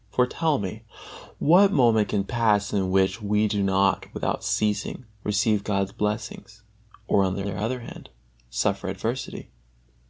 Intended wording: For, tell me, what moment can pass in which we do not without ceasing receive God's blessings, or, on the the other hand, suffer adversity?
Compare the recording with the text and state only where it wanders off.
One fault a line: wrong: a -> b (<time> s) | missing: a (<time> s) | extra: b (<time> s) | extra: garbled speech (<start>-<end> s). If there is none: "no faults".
no faults